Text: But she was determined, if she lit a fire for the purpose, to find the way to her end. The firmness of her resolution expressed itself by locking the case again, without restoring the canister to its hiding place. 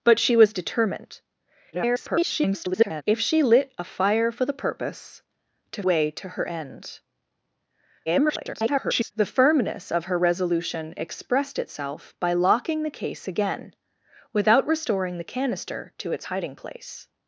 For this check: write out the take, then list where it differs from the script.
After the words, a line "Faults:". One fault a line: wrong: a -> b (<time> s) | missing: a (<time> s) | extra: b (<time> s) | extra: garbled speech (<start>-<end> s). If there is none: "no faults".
But she was determined, [garbled] if she lit a fire for the purpose, to way to her end. [garbled] The firmness of her resolution expressed itself by locking the case again, without restoring the canister to its hiding place.
Faults:
extra: garbled speech (1.7-3.0 s)
missing: find the (5.8 s)
extra: garbled speech (8.1-9.1 s)